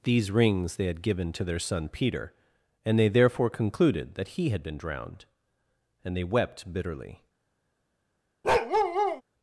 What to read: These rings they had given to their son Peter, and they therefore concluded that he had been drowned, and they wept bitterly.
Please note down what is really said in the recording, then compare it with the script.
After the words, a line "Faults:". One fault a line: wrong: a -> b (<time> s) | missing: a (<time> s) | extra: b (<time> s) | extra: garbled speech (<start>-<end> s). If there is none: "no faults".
These rings they had given to their son Peter, and they therefore concluded that he had been drowned, and they wept bitterly.
Faults:
no faults